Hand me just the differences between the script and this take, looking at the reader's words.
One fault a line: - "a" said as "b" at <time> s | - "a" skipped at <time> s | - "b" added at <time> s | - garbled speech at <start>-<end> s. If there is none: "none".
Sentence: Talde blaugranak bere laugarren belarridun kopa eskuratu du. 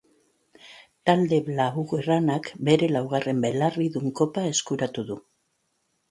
none